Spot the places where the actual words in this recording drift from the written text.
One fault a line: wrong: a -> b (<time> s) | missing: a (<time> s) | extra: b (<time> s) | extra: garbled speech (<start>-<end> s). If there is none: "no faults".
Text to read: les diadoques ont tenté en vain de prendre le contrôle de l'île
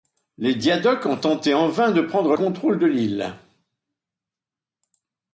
missing: le (2.4 s)